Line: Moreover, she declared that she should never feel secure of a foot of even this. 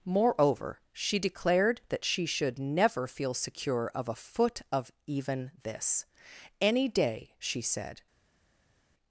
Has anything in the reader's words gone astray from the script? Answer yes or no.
yes